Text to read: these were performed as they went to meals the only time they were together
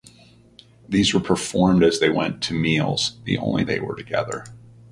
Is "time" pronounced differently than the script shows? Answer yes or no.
yes